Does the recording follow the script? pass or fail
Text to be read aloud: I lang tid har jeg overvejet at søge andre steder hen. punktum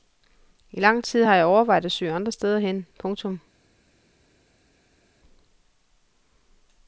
pass